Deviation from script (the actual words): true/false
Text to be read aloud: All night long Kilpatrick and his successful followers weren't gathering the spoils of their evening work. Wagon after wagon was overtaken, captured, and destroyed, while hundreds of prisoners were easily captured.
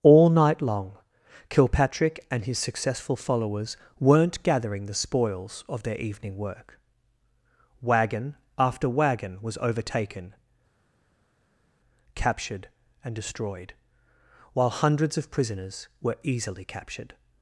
false